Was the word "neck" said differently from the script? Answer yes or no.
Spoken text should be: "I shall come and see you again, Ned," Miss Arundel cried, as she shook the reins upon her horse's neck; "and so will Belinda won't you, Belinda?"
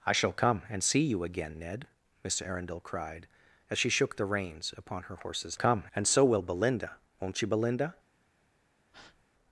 yes